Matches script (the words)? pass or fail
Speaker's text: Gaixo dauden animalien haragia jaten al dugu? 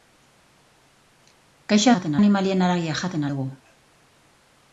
fail